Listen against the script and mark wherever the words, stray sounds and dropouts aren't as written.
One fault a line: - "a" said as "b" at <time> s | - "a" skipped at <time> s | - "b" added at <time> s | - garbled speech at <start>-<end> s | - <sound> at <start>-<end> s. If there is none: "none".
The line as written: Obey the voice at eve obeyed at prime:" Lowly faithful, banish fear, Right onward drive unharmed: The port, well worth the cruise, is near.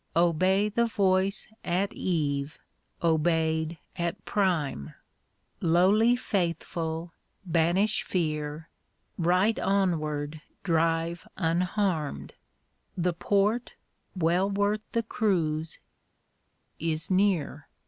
none